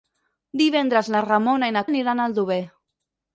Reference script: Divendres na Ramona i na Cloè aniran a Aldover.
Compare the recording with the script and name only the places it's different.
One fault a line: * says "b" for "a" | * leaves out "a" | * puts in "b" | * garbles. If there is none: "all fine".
* leaves out "Cloè"